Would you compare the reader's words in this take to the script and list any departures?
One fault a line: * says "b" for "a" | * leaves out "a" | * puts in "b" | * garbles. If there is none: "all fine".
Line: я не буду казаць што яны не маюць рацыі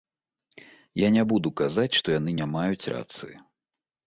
all fine